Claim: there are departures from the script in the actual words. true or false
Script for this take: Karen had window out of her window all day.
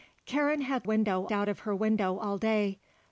false